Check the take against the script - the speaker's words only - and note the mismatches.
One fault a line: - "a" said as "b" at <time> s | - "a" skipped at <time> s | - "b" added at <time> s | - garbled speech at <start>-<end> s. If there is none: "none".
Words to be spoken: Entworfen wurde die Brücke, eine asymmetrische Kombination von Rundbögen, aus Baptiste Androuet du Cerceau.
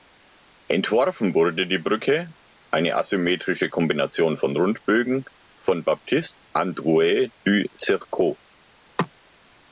- "aus" said as "von" at 5.6 s